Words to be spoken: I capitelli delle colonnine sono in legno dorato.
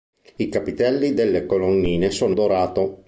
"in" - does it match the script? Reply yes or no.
no